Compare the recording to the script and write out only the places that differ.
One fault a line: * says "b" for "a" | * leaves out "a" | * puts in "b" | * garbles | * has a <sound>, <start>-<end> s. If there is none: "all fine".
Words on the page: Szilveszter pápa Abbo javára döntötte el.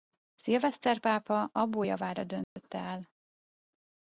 * has a dropout, 2.4-2.6 s